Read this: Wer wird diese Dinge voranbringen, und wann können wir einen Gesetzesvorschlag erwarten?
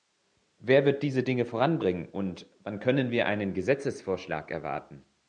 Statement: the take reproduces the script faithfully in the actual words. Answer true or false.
true